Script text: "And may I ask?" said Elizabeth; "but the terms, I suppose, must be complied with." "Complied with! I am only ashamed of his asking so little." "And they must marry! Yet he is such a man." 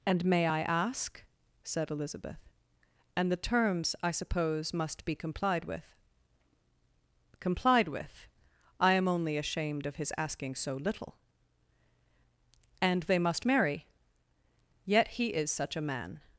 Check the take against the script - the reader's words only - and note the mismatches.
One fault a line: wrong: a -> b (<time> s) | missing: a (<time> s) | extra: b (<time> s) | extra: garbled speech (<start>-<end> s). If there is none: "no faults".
wrong: but -> and (3.1 s)